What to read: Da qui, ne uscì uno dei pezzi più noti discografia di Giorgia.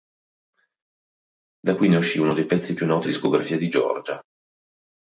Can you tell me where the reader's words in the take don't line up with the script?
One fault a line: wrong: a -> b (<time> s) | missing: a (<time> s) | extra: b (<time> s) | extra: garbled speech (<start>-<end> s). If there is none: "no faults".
no faults